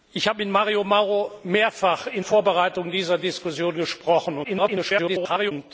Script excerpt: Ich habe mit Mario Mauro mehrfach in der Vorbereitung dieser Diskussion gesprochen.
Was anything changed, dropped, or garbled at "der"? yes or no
yes